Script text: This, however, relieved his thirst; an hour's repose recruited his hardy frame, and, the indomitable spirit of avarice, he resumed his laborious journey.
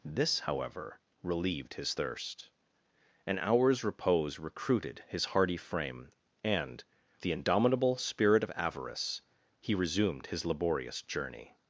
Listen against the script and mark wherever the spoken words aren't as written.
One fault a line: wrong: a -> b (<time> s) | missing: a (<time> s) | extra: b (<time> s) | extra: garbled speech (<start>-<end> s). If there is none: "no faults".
no faults